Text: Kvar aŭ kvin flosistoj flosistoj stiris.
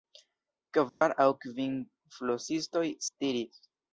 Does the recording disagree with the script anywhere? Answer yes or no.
yes